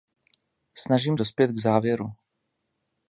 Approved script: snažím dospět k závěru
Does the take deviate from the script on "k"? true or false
false